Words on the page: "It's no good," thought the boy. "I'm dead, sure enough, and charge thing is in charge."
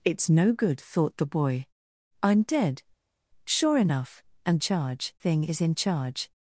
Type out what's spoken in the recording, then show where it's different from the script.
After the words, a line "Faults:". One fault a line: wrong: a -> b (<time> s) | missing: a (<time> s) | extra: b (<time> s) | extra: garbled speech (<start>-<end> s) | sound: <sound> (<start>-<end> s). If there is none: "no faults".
"It's no good," thought the boy. "I'm dead, sure enough, and charge thing is in charge."
Faults:
no faults